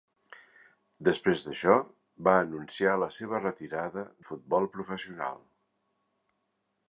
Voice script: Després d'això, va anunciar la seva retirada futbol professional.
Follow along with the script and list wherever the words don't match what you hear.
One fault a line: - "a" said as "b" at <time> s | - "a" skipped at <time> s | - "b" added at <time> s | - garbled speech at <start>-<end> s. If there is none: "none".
none